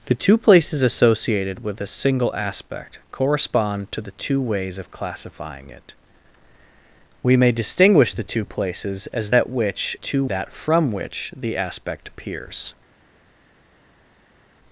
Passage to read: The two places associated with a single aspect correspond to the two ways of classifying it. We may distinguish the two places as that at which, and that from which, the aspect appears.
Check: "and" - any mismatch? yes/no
yes